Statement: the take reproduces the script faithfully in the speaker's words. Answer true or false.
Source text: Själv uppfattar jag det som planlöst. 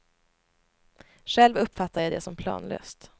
true